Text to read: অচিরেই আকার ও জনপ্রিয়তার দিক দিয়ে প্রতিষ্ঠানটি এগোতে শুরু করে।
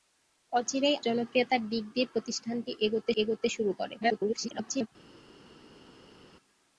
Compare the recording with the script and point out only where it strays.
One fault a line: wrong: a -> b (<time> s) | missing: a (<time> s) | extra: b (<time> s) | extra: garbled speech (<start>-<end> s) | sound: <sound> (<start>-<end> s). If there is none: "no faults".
missing: আকার ও (1.0 s)
extra: এগোতে (3.2 s)
extra: garbled speech (4.0-4.9 s)